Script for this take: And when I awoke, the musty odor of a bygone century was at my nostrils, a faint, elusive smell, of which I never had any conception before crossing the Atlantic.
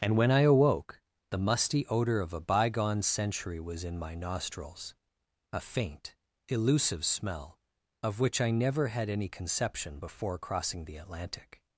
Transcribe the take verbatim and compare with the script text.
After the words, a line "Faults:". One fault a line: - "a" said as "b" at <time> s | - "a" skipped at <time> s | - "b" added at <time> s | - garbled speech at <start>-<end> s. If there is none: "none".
And when I awoke, the musty odor of a bygone century was in my nostrils, a faint, elusive smell, of which I never had any conception before crossing the Atlantic.
Faults:
- "at" said as "in" at 3.8 s